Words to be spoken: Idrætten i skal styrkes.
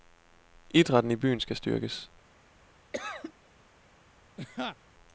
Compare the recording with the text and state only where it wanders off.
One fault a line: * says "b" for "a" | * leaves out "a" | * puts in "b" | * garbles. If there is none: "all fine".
* puts in "byen"